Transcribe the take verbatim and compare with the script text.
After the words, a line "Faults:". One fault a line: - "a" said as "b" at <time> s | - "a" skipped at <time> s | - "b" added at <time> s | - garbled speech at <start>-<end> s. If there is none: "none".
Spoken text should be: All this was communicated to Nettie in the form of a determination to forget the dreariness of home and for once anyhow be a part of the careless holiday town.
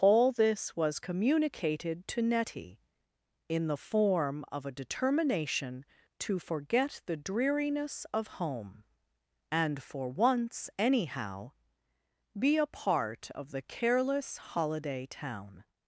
All this was communicated to Nettie in the form of a determination to forget the dreariness of home and for once anyhow be a part of the careless holiday town.
Faults:
none